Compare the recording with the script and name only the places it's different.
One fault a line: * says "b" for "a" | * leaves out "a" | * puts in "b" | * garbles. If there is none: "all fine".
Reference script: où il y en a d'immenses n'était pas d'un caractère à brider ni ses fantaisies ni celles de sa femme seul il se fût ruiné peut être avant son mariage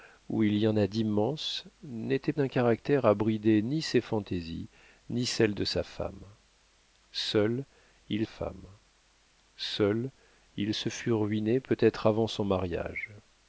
* leaves out "pas"
* puts in "femme seul il"